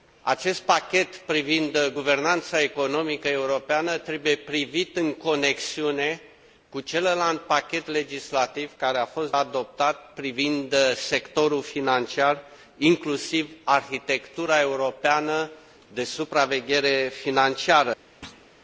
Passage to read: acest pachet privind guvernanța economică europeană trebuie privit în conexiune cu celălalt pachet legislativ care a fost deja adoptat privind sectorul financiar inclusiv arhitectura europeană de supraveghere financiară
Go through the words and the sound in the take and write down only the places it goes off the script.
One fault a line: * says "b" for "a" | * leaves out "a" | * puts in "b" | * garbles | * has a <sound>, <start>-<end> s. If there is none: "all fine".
* leaves out "deja"
* has a thud, 18.2-18.5 s